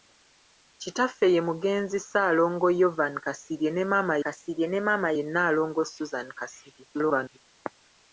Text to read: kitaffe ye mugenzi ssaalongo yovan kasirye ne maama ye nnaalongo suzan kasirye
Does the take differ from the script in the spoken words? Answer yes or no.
yes